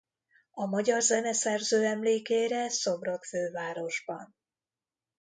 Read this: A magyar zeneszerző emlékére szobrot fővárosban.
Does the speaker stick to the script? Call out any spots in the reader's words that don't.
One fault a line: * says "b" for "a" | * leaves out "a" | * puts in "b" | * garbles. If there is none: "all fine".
all fine